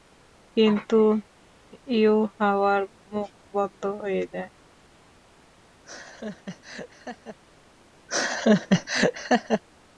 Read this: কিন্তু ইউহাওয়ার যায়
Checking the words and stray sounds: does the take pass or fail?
fail